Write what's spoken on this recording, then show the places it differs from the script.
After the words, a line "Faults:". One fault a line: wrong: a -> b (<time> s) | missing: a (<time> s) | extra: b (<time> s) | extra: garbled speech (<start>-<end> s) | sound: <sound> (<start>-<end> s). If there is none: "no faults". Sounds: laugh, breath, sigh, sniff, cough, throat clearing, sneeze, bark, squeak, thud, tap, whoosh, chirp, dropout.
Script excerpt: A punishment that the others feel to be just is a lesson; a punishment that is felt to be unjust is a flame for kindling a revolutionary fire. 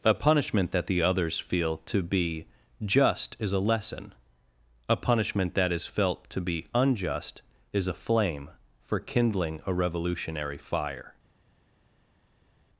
A punishment that the others feel to be just is a lesson; a punishment that is felt to be unjust is a flame for kindling a revolutionary fire.
Faults:
no faults